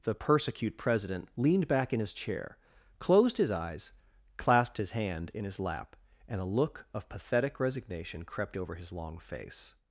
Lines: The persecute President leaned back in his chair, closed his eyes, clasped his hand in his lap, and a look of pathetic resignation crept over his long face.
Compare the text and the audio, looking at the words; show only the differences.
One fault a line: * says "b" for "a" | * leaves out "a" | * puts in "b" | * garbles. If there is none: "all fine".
all fine